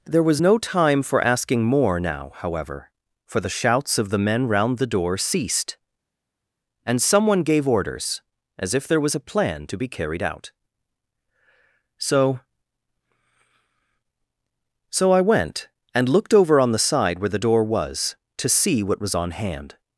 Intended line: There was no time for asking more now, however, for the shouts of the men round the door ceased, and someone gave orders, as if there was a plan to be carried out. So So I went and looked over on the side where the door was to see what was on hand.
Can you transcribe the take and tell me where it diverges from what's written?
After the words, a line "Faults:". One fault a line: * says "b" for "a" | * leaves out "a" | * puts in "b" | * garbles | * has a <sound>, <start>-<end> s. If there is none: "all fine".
There was no time for asking more now, however, for the shouts of the men round the door ceased, and someone gave orders, as if there was a plan to be carried out. So So I went and looked over on the side where the door was to see what was on hand.
Faults:
all fine